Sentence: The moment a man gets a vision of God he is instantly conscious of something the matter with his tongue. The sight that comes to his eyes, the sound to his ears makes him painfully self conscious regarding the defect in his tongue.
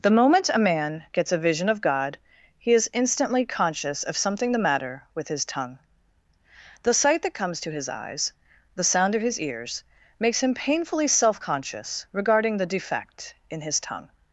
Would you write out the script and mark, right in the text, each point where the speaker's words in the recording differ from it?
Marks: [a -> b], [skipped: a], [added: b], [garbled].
The moment a man gets a vision of God he is instantly conscious of something the matter with his tongue. The sight that comes to his eyes, the sound [to -> of] his ears makes him painfully self conscious regarding the defect in his tongue.